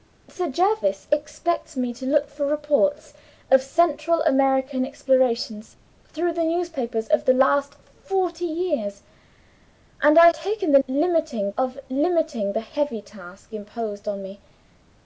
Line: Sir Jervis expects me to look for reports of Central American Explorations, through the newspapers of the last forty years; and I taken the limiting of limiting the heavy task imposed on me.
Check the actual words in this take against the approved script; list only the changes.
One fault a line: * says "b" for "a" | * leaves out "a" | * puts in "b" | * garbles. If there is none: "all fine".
all fine